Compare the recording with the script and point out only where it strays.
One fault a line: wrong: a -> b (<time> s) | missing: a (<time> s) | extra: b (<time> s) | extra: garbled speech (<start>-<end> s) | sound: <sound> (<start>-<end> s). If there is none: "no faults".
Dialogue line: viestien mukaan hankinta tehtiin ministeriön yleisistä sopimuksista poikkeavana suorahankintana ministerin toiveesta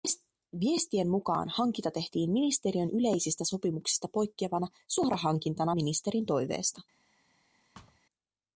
sound: thud (7.7-8.0 s)